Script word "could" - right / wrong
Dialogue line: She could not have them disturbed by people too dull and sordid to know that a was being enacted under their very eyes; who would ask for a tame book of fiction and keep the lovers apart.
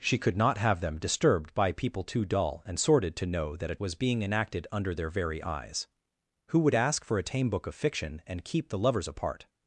right